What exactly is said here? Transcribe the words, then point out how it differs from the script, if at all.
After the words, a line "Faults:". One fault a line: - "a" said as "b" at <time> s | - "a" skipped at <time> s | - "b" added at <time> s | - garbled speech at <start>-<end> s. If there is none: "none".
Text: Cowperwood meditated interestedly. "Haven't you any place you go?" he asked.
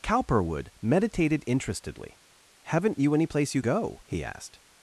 Cowperwood meditated interestedly. "Haven't you any place you go?" he asked.
Faults:
none